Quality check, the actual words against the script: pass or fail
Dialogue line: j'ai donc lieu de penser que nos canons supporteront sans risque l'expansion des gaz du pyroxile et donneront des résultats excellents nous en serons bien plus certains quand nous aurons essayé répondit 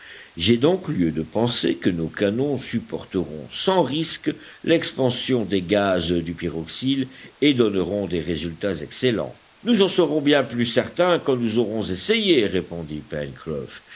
pass